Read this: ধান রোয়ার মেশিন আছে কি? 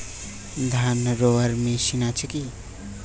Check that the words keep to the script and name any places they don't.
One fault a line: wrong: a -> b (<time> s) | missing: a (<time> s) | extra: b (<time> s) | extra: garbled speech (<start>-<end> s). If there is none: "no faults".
no faults